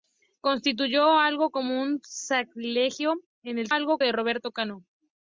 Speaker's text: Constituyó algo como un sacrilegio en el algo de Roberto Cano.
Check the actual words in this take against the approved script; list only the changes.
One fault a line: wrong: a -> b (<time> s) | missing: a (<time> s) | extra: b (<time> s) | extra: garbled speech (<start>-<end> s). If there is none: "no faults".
no faults